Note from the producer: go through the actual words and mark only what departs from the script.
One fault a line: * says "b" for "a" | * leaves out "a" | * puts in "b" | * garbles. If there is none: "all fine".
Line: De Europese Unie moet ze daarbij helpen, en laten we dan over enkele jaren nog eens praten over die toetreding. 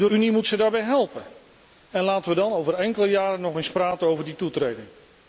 * leaves out "Europese"